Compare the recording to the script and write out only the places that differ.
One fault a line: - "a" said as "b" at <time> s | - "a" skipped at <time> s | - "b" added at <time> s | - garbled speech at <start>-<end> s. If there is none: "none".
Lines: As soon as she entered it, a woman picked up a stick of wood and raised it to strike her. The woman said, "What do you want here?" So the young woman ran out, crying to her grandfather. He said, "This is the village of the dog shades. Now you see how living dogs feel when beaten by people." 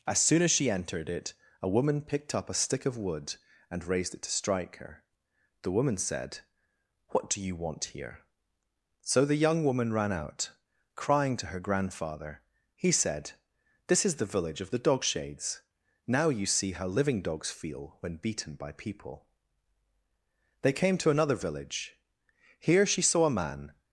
- "They came to another village Here she saw a man" added at 20.6 s